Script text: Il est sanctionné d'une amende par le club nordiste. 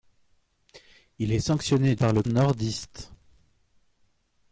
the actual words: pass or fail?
fail